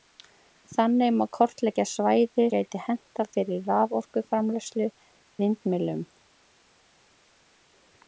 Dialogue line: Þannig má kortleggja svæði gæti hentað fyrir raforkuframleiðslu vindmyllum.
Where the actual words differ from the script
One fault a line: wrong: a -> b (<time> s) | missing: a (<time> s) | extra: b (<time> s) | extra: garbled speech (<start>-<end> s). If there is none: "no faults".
no faults